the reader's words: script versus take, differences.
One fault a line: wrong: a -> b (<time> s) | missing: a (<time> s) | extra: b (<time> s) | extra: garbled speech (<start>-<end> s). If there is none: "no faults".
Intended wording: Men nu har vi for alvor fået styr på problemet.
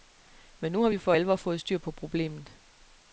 no faults